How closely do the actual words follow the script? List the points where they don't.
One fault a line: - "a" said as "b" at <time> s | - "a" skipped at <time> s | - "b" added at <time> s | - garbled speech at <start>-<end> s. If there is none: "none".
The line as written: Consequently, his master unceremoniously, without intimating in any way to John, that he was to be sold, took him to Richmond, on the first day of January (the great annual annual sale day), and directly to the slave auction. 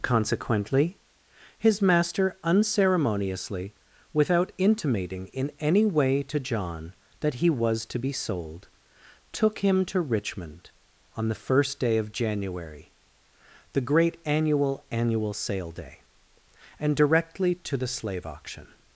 none